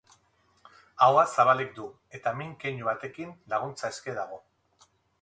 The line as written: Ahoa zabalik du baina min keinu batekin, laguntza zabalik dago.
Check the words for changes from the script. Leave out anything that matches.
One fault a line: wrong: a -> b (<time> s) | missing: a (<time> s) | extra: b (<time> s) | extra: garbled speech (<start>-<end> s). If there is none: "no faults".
wrong: baina -> eta (2.2 s)
wrong: zabalik -> eske (4.0 s)